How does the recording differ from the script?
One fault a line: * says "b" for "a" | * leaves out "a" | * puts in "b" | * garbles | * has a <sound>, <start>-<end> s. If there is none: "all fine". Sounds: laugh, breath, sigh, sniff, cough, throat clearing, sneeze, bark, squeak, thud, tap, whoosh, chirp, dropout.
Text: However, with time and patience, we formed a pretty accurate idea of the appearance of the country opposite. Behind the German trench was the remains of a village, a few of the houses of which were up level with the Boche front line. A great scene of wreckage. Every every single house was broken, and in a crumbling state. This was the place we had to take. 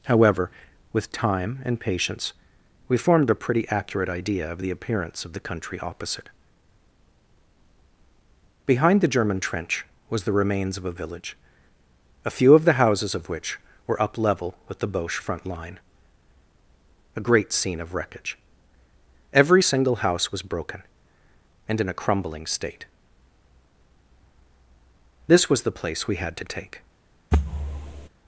* leaves out "every"
* has a thud, 27.3-28.1 s